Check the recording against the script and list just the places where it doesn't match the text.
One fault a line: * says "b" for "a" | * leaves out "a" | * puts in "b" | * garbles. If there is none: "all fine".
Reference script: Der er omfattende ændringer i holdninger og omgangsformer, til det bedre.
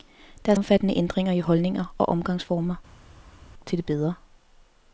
all fine